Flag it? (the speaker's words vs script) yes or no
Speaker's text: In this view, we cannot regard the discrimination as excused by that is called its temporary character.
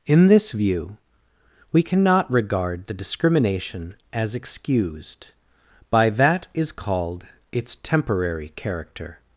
no